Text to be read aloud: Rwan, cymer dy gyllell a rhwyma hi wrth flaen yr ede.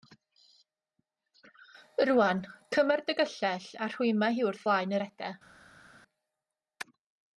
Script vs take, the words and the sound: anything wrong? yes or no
no